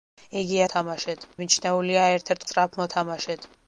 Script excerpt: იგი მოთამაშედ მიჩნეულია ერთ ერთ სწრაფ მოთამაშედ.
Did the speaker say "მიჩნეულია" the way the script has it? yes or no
yes